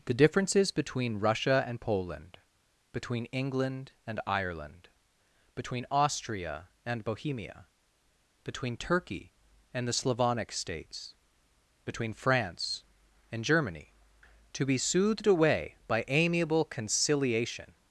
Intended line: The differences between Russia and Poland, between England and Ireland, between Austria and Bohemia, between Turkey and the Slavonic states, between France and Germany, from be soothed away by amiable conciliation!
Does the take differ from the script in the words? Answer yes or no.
yes